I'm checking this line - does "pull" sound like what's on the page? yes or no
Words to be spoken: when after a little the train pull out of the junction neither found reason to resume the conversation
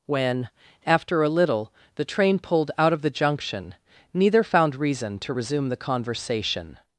no